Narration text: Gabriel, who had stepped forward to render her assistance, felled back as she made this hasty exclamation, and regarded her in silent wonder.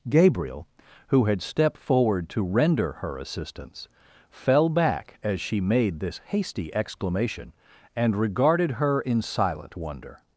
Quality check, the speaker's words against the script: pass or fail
fail